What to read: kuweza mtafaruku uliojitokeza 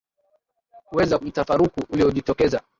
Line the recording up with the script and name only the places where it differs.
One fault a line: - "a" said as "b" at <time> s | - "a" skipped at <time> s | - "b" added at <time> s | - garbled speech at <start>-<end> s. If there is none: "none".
none